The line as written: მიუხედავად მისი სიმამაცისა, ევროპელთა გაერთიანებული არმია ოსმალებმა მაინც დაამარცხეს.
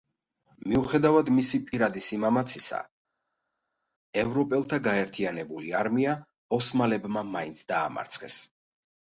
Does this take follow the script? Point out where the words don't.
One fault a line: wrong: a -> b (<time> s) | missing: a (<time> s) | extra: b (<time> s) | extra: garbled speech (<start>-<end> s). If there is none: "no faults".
extra: პირადი (1.7 s)